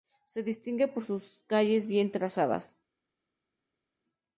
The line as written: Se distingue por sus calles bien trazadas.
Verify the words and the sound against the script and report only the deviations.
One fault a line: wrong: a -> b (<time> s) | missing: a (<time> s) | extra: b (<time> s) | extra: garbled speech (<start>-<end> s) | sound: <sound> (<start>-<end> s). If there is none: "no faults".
no faults